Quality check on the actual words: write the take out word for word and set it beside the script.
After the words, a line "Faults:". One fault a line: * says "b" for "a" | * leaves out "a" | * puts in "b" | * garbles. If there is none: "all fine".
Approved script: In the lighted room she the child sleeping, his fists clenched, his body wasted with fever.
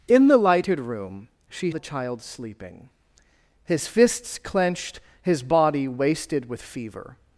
In the lighted room she the child sleeping, his fists clenched, his body wasted with fever.
Faults:
all fine